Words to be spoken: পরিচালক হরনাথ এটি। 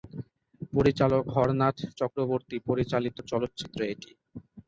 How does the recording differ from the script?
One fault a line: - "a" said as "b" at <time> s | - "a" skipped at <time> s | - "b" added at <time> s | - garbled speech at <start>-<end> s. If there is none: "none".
- "চক্রবর্তী পরিচালিত চলচ্চিত্র" added at 2.0 s